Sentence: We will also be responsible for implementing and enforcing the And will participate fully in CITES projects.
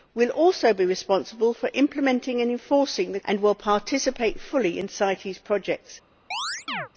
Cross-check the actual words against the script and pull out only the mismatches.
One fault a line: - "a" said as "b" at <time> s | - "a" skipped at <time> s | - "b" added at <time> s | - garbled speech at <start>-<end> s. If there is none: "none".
none